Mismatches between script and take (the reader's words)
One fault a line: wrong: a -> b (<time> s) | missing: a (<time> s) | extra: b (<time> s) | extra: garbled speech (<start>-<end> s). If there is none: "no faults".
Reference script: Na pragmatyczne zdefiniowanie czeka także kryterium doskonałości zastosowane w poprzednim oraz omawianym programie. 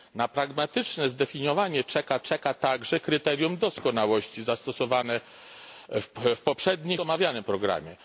extra: czeka (2.2 s)
missing: oraz (7.0 s)